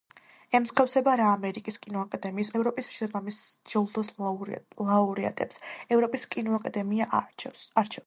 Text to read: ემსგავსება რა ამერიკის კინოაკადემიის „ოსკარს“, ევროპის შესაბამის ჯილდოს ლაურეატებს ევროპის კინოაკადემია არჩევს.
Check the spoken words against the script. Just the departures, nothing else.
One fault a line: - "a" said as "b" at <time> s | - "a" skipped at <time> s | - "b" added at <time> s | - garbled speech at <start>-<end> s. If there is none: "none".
- "ოსკარს" skipped at 2.5 s